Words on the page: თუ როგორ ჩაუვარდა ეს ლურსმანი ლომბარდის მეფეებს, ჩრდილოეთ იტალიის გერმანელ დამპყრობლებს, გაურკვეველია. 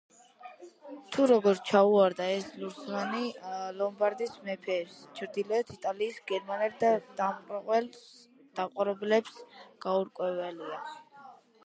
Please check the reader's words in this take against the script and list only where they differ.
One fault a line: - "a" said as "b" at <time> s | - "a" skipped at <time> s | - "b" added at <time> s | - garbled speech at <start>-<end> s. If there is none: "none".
none